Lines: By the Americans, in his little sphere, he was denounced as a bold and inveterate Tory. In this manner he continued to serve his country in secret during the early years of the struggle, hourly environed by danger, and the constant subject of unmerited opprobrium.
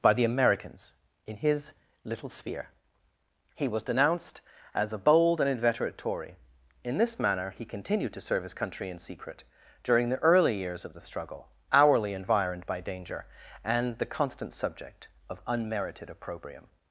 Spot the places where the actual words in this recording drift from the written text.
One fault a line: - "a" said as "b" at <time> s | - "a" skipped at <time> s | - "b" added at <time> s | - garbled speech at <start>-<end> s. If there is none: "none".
none